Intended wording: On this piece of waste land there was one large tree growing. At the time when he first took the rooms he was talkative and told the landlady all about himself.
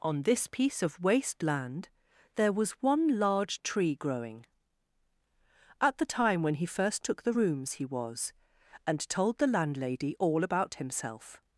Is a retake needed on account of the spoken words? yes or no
yes